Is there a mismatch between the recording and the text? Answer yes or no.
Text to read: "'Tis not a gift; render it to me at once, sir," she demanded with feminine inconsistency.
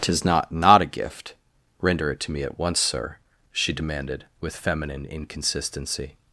yes